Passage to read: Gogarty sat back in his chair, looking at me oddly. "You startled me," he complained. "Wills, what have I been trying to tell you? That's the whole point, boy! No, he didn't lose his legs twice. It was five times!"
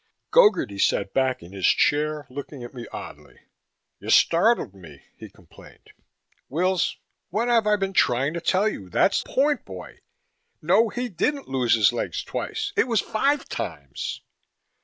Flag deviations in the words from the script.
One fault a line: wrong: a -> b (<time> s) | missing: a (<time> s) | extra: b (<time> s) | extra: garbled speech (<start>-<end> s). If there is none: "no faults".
missing: the whole (9.2 s)